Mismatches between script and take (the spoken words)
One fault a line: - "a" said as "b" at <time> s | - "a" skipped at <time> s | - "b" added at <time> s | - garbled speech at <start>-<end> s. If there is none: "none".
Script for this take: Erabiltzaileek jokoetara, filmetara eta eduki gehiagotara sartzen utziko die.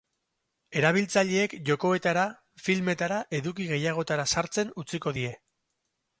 - "eta" skipped at 3.2 s